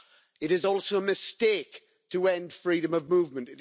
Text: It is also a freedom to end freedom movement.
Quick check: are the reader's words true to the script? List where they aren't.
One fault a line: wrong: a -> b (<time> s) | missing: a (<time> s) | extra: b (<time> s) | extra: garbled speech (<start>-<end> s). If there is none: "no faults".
wrong: freedom -> mistake (1.0 s)
extra: of (2.9 s)